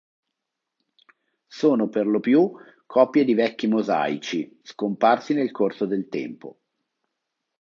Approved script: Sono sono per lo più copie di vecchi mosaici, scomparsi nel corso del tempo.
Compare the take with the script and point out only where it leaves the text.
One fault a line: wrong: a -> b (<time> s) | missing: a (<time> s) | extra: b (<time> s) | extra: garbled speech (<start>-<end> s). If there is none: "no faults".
missing: sono (1.9 s)